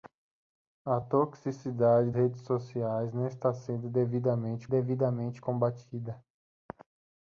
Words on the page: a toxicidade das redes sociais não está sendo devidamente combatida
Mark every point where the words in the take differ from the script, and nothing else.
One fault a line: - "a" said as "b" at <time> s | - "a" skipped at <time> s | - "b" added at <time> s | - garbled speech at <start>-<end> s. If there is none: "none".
- "das" skipped at 2.1 s
- "devidamente" added at 4.7 s